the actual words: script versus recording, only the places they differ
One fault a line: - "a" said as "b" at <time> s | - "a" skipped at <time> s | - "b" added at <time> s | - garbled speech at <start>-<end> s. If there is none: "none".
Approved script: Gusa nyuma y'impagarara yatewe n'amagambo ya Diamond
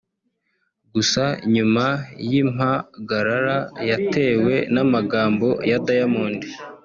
none